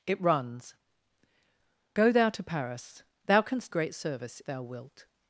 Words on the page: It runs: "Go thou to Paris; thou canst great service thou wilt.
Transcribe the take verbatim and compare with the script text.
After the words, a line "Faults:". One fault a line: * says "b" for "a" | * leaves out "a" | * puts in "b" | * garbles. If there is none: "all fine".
It runs: "Go thou to Paris; thou canst great service thou wilt.
Faults:
all fine